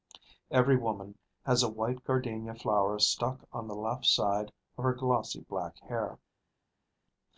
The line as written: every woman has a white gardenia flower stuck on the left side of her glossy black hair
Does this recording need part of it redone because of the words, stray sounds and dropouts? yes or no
no